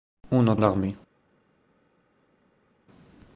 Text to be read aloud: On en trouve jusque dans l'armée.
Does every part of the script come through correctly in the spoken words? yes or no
no